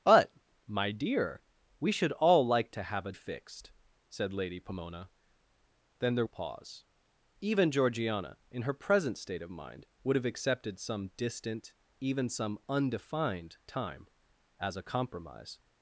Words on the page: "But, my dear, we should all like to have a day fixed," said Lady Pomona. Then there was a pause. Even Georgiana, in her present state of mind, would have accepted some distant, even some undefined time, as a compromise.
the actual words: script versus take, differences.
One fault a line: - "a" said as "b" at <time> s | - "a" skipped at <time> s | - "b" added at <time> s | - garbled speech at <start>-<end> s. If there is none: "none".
- "day" skipped at 3.1 s
- "was" skipped at 6.3 s